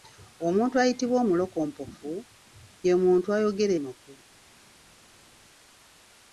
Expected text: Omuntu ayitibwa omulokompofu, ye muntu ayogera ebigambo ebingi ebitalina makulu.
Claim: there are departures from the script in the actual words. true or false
true